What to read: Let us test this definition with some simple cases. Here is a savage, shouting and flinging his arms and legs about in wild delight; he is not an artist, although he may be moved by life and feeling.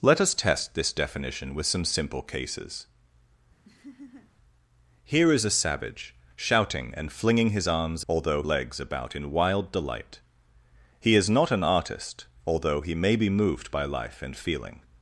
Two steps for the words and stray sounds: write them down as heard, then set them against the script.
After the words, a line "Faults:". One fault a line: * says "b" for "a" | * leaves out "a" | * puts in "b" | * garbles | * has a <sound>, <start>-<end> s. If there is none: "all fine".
Let us test this definition with some simple cases. Here is a savage, shouting and flinging his arms although legs about in wild delight; he is not an artist, although he may be moved by life and feeling.
Faults:
* has a laugh, 3.6-4.3 s
* says "although" for "and"